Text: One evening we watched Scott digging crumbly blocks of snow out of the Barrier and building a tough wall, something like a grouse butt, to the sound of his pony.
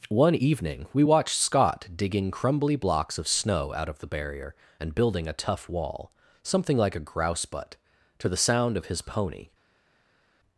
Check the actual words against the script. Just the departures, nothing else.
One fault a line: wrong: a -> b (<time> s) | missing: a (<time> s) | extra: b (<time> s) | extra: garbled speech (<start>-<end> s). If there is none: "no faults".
no faults